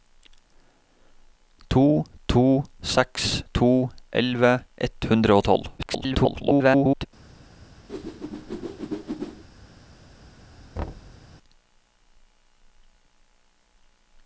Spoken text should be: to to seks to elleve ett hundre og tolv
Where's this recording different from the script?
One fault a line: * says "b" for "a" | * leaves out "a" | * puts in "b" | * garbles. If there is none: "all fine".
* garbles